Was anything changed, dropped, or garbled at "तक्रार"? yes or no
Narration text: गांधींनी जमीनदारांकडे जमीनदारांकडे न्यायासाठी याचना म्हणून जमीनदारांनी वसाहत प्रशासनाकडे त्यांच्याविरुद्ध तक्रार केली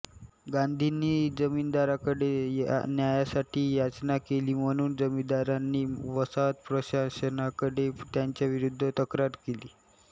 no